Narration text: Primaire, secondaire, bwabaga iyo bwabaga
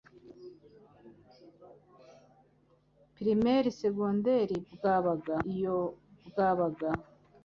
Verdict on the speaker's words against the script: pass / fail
pass